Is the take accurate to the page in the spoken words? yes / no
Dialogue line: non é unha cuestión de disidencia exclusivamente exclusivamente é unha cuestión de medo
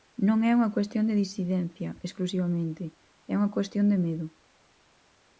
no